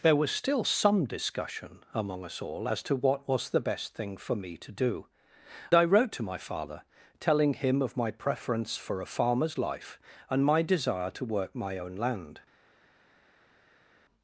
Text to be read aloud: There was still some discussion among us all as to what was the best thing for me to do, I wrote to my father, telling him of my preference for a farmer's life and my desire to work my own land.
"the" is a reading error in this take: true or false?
false